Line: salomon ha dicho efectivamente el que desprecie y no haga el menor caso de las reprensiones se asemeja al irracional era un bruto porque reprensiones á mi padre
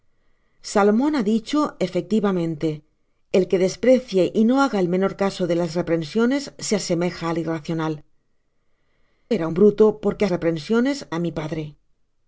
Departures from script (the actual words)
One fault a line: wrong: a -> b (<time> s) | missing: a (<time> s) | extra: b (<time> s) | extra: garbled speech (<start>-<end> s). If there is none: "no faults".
no faults